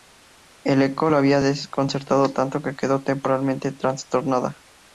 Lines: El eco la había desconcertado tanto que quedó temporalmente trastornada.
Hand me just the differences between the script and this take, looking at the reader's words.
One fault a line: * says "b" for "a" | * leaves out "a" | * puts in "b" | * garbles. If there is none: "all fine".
all fine